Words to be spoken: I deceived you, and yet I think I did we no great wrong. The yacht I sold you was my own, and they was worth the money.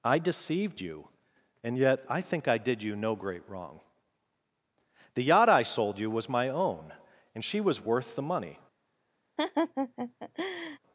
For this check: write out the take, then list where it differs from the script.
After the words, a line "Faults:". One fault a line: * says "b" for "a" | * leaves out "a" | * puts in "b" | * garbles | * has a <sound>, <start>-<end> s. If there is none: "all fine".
I deceived you, and yet I think I did you no great wrong. The yacht I sold you was my own, and she was worth the money.
Faults:
* says "you" for "we"
* says "she" for "they"
* has a laugh, 9.4-10.8 s